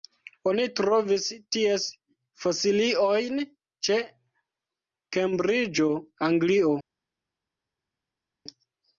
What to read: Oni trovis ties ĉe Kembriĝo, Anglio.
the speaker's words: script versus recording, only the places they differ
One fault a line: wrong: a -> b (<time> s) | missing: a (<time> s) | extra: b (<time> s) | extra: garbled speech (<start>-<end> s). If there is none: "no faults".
extra: fosiliojn (2.5 s)